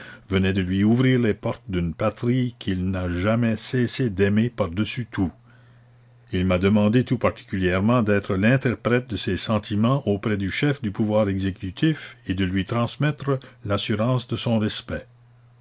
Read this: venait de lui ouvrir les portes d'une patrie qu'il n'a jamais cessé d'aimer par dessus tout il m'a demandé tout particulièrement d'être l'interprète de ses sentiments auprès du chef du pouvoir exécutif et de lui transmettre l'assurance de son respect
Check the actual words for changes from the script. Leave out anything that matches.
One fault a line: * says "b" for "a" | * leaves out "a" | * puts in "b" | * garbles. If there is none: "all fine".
all fine